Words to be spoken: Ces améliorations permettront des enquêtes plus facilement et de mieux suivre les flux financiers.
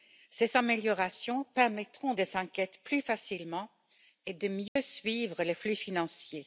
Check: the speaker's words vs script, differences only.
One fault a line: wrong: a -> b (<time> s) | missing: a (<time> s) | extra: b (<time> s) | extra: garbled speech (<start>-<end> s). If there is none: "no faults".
no faults